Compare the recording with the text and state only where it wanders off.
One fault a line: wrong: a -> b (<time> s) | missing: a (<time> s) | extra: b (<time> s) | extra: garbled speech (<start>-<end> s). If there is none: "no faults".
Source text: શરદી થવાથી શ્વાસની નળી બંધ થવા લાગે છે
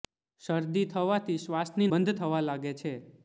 missing: નળી (1.9 s)